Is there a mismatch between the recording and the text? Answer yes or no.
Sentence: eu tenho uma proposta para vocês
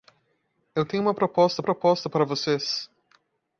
yes